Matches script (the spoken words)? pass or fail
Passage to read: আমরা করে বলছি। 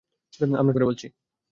pass